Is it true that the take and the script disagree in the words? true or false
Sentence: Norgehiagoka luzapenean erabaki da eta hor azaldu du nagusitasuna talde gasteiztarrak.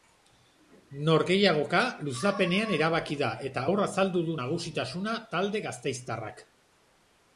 false